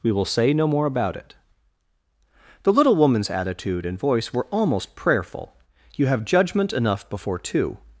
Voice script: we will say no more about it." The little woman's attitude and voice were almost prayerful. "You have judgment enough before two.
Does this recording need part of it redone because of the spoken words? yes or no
no